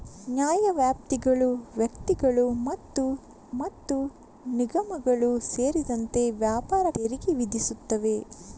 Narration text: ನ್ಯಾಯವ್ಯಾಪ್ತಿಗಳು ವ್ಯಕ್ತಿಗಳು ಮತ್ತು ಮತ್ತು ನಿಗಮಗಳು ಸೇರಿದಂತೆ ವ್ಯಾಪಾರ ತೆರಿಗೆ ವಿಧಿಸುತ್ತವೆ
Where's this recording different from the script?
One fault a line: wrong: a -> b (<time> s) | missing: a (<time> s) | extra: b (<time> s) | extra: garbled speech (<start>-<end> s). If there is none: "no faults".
no faults